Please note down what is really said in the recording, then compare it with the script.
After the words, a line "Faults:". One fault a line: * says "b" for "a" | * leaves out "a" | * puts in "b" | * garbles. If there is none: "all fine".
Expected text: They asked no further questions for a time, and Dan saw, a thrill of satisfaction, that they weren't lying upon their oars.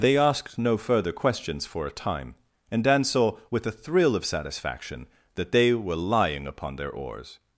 They asked no further questions for a time, and Dan saw, with a thrill of satisfaction, that they were lying upon their oars.
Faults:
* puts in "with"
* says "were" for "weren't"